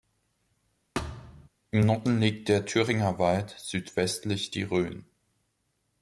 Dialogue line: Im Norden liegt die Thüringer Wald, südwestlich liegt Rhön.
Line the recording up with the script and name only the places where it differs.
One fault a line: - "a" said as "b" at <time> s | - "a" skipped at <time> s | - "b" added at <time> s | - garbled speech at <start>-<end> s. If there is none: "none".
- "die" said as "der" at 2.5 s
- "liegt" said as "die" at 4.5 s